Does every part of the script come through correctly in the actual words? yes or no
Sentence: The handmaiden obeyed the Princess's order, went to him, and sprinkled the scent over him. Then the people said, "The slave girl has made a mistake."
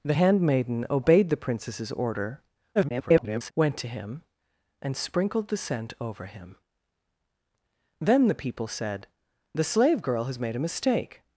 no